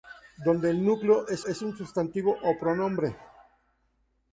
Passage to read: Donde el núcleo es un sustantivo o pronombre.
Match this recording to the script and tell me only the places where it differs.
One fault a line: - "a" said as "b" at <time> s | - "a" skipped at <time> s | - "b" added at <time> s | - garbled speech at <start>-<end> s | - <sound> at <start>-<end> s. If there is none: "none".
- "es" added at 1.4 s